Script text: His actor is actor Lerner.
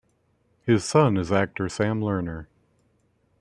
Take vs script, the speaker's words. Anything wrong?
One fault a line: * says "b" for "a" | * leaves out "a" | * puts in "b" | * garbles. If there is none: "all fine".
* says "son" for "actor"
* puts in "Sam"